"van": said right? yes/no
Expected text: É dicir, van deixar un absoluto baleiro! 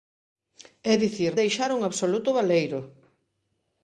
no